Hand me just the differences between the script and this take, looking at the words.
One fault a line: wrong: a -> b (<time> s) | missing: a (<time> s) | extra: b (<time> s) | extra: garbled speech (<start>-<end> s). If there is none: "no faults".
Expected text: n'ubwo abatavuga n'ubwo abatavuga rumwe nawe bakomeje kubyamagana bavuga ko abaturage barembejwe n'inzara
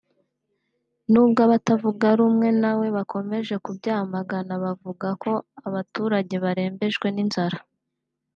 missing: n'ubwo abatavuga (2.1 s)